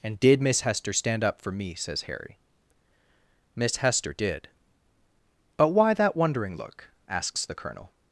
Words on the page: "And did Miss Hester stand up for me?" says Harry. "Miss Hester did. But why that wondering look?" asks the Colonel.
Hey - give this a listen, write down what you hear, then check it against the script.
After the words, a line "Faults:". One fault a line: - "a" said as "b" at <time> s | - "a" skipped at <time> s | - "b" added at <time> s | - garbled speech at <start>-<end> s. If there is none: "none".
"And did Miss Hester stand up for me?" says Harry. "Miss Hester did. But why that wondering look?" asks the Colonel.
Faults:
none